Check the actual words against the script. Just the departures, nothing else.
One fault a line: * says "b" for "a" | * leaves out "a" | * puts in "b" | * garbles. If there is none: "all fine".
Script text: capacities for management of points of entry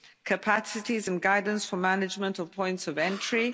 * puts in "and guidance"